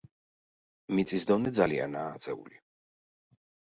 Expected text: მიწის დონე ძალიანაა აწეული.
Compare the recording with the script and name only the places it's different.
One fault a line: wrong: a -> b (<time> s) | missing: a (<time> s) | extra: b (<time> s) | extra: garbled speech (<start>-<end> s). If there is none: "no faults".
no faults